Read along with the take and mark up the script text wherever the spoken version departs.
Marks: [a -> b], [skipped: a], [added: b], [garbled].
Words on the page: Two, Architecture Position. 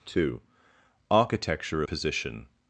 Two, Architecture Position.